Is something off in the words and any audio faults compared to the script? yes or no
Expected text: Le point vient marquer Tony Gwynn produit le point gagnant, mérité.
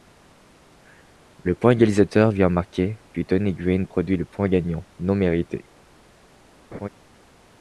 yes